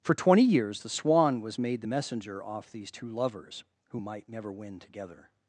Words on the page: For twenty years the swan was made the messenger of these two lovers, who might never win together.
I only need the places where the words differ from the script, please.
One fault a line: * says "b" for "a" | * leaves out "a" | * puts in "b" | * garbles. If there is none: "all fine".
* says "off" for "of"